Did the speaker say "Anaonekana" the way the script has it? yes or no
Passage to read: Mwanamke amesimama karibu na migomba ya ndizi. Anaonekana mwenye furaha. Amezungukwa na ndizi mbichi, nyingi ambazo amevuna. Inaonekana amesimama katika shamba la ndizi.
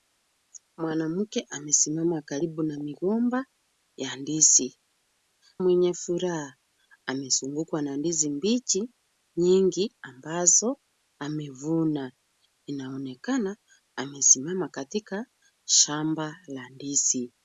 no